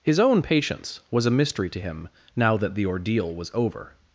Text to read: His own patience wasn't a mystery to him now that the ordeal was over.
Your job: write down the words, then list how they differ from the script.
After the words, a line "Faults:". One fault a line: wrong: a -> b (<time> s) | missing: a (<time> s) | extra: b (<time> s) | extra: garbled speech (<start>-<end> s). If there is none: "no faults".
His own patience was a mystery to him now that the ordeal was over.
Faults:
wrong: wasn't -> was (1.1 s)